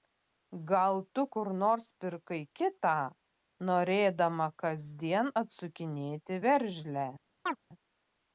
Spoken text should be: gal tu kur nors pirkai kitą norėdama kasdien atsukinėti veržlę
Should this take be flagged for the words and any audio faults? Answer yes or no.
yes